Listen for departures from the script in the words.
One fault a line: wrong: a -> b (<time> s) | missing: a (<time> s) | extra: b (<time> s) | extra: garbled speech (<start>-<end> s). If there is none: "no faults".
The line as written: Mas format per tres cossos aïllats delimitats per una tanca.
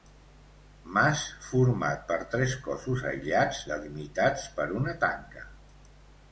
no faults